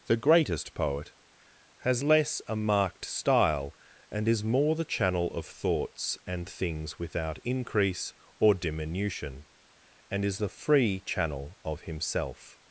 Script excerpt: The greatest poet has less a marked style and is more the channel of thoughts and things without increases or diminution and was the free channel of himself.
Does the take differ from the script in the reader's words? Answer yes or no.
yes